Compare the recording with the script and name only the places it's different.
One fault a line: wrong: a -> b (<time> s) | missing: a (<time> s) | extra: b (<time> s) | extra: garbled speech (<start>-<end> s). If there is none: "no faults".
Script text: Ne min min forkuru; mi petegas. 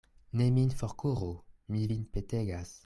missing: min (0.7 s)
extra: vin (1.9 s)